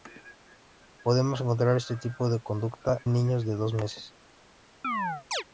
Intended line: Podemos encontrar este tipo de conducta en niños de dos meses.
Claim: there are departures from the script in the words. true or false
false